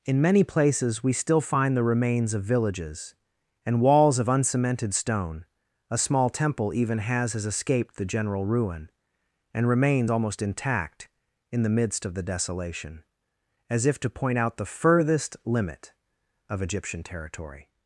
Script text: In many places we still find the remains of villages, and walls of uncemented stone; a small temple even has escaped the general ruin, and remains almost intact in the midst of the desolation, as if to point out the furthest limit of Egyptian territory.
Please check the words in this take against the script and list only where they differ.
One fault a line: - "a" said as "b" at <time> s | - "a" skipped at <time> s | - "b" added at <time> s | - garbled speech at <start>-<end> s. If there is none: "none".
- "has" added at 7.3 s